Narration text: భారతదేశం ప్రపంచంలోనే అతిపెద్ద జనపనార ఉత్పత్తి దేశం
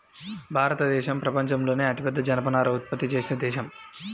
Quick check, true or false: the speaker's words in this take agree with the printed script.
false